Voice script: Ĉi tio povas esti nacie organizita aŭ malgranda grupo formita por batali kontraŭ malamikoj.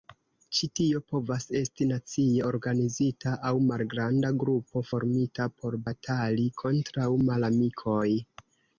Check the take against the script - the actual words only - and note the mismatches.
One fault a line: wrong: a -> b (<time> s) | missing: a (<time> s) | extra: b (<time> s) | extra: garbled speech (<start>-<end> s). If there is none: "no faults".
no faults